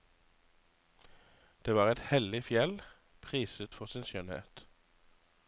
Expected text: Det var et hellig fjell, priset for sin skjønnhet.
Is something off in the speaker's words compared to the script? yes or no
no